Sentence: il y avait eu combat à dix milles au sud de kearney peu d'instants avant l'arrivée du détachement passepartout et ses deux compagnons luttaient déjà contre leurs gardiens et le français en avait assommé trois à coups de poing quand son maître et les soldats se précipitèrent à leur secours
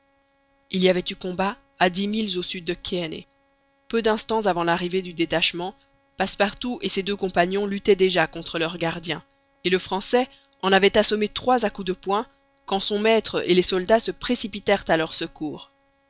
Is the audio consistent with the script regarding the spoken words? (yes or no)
yes